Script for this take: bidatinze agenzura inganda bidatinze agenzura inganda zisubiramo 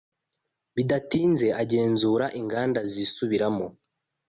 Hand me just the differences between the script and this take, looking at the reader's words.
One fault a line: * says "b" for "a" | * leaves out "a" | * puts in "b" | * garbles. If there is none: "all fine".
* leaves out "bidatinze agenzura inganda"